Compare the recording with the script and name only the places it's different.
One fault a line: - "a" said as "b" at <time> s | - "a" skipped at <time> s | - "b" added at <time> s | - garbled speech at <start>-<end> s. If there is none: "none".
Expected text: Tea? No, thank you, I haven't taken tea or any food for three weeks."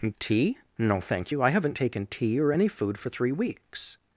none